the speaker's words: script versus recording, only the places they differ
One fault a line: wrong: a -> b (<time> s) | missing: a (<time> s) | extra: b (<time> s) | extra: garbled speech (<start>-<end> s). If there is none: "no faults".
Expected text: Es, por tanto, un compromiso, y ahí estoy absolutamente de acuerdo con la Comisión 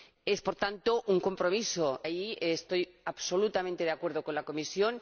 missing: y (2.0 s)